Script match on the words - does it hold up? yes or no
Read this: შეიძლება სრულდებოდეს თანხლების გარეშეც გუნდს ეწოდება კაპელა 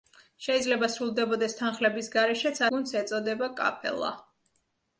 yes